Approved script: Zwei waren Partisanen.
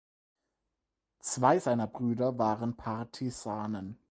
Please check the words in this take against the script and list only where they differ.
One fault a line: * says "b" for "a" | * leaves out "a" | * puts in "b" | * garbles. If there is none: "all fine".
* puts in "seiner Brüder"